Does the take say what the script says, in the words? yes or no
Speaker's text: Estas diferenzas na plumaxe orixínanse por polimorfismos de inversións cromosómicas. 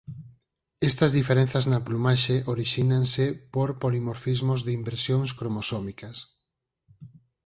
yes